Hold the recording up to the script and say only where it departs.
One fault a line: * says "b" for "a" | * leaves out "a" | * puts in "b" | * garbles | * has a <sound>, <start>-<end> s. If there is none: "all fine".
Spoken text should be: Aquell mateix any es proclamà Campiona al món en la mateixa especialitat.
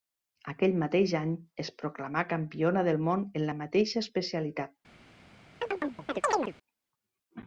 * says "del" for "al"
* has a chirp, 5.6-6.5 s